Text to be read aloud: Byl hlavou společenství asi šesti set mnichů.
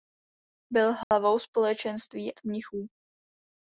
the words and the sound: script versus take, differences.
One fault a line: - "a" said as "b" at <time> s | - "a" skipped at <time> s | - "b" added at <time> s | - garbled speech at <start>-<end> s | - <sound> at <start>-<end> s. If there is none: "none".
- dropout at 1.0-1.1 s
- "asi šesti set" skipped at 2.4 s